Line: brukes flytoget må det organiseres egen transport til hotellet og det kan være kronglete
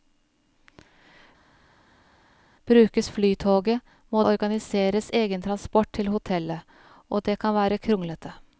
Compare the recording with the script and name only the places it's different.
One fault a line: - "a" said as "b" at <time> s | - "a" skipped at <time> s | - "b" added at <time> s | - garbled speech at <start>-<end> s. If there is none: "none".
- "det" skipped at 4.2 s